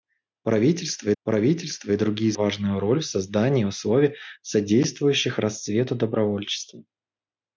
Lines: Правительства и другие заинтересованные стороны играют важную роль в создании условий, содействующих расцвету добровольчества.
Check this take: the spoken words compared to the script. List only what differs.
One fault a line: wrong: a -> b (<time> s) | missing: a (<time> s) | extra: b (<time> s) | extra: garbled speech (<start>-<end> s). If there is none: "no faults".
extra: правительства (1.2 s)
missing: заинтересованные стороны играют (2.3 s)